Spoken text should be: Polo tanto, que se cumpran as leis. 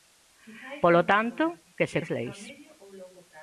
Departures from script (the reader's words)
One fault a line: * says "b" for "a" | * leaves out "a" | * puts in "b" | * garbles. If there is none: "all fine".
* leaves out "cumpran"